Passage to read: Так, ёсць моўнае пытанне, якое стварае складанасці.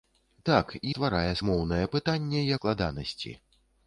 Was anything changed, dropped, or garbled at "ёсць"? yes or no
yes